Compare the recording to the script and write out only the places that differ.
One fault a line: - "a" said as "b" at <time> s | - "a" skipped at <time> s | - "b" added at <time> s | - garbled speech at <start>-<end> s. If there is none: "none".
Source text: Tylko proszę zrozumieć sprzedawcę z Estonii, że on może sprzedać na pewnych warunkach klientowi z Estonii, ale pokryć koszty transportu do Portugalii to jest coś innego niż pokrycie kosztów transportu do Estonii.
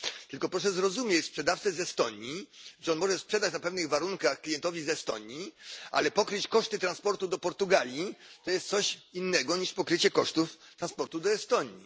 none